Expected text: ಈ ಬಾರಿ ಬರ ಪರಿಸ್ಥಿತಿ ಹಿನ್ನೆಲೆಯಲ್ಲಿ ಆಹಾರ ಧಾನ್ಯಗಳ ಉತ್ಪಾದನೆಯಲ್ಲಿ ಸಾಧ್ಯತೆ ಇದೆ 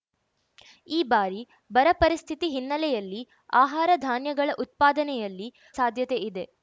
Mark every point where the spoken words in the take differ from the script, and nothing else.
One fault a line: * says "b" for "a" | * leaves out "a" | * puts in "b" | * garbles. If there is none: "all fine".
all fine